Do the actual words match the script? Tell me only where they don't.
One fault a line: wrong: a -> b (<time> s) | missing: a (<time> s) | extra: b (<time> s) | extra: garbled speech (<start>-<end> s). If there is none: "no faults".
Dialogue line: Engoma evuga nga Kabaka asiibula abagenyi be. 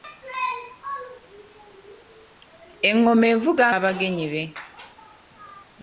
missing: nga Kabaka asiibula (3.6 s)